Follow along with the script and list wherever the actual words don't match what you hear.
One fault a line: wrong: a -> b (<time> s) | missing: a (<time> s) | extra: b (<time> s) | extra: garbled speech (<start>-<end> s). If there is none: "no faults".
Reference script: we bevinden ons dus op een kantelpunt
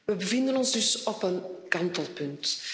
no faults